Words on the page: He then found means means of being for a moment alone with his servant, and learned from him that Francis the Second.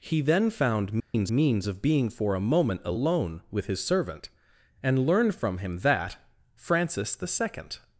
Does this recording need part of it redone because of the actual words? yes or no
no